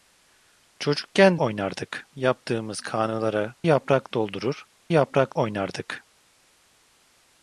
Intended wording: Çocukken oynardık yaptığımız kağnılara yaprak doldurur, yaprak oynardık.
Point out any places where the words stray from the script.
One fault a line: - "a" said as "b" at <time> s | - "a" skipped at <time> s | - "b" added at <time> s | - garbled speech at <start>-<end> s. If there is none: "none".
none